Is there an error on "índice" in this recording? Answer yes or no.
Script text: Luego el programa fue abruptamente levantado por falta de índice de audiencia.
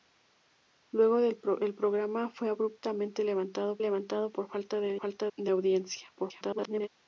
yes